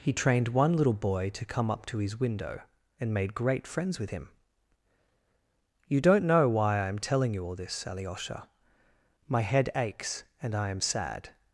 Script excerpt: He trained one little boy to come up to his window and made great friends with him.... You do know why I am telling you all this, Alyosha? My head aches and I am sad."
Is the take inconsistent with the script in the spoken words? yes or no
yes